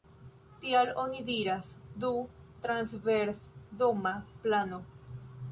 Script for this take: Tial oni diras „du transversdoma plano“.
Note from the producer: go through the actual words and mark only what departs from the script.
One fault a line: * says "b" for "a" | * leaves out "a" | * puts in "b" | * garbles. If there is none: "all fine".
all fine